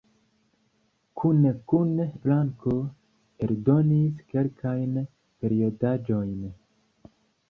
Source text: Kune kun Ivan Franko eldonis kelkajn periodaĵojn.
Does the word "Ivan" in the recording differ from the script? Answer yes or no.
yes